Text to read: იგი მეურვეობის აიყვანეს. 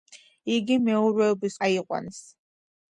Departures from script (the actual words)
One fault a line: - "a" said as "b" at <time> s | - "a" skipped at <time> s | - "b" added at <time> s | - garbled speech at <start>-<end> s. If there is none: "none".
none